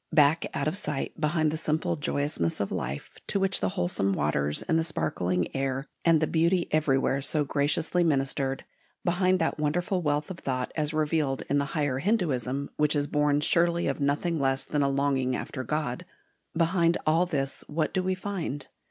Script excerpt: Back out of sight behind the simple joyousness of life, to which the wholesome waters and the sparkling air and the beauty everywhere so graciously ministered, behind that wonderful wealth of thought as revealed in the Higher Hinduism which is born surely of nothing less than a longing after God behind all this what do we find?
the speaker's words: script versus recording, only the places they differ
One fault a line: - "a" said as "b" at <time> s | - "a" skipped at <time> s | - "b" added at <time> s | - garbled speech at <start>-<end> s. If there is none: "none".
none